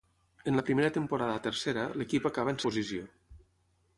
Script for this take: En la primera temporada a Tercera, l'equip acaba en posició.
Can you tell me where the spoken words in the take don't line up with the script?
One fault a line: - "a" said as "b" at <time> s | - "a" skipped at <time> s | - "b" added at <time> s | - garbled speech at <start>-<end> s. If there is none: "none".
none